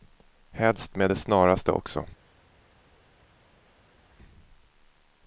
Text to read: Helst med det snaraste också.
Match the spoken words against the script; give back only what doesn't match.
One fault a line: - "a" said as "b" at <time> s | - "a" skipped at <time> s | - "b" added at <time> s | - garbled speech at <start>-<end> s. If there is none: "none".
none